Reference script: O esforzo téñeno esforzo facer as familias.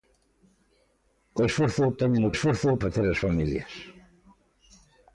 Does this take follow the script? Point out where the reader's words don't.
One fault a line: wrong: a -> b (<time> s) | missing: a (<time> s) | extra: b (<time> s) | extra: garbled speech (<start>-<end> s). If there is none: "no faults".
no faults